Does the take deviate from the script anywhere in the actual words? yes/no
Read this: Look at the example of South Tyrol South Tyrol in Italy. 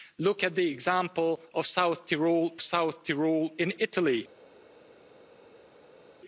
no